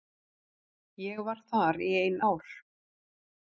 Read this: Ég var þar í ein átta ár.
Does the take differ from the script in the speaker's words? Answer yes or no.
yes